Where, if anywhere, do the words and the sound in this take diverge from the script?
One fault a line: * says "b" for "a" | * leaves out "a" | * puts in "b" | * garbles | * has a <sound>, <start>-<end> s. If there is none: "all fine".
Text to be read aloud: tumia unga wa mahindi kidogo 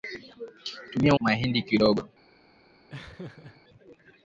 * leaves out "unga wa"
* has a laugh, 2.9-3.6 s